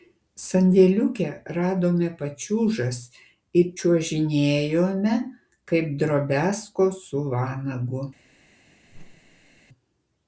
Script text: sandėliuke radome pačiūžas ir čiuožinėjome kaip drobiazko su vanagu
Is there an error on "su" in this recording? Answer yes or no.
no